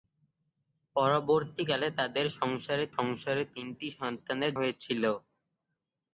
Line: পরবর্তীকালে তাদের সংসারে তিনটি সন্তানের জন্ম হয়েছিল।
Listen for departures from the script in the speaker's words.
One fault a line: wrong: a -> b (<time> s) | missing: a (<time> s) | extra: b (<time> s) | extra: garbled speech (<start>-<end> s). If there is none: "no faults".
extra: সংসারে (3.0 s)
missing: জন্ম (4.5 s)